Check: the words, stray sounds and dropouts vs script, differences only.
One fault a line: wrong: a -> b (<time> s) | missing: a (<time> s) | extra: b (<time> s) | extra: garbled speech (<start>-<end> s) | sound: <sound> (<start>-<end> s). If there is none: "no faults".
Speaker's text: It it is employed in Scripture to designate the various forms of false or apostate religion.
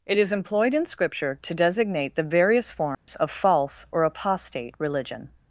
missing: it (0.2 s)
sound: dropout (2.9-3.1 s)